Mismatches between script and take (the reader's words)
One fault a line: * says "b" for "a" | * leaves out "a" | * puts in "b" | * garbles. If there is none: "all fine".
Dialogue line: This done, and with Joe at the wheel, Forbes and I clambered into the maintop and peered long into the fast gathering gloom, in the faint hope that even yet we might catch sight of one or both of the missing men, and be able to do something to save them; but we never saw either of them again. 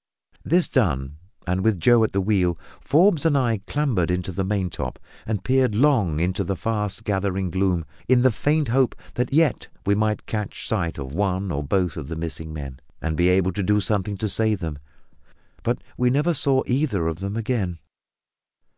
* leaves out "even"